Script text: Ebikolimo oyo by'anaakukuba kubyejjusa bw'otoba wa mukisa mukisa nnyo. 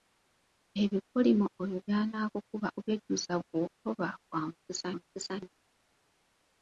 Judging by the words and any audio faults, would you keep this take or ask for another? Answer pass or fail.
pass